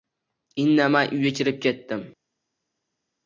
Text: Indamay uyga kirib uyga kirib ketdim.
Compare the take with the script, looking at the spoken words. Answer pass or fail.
fail